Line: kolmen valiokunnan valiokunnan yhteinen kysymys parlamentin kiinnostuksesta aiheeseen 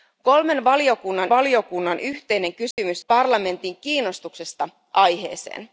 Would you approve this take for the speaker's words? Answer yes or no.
yes